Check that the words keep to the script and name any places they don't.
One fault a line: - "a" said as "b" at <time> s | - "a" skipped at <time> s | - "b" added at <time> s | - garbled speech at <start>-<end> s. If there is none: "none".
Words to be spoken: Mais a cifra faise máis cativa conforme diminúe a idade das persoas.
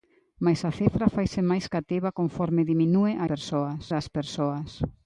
- "idade" said as "persoas" at 3.3 s